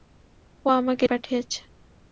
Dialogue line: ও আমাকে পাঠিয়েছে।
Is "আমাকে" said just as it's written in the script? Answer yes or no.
yes